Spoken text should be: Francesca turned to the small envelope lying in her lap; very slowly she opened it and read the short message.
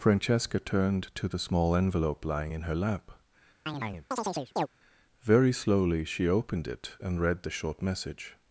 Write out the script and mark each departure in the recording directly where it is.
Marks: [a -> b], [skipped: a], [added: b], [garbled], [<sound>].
Francesca turned to the small envelope lying in her lap; [chirp] very slowly she opened it and read the short message.